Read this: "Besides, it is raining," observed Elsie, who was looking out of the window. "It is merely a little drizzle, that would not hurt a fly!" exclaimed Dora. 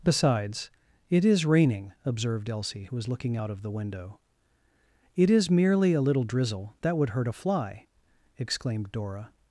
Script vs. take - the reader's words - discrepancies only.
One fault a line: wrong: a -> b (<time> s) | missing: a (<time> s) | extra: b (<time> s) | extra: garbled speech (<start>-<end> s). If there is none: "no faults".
missing: not (7.1 s)